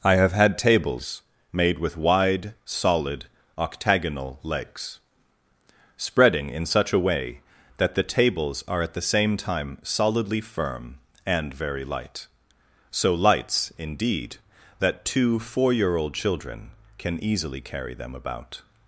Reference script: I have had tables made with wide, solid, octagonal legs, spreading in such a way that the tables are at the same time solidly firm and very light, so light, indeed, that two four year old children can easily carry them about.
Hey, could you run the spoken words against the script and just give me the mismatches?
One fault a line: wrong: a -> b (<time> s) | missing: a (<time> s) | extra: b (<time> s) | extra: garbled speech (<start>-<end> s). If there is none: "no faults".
wrong: light -> lights (13.1 s)